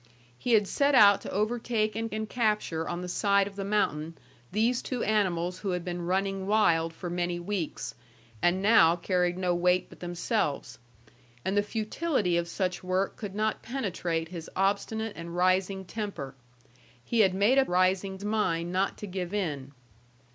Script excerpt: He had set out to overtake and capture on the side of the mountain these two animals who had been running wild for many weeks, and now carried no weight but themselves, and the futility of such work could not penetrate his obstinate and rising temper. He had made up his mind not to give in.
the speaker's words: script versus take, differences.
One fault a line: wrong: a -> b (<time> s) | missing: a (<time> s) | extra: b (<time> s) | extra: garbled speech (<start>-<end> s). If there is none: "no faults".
extra: and (2.1 s)
wrong: his -> rising (17.7 s)